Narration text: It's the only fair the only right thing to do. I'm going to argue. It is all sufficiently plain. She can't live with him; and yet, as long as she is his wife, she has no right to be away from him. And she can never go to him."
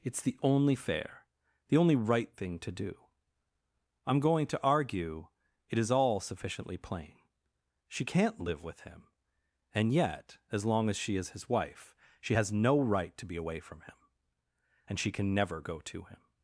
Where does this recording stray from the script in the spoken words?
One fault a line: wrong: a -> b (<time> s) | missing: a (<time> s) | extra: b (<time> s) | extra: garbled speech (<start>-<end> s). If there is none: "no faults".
no faults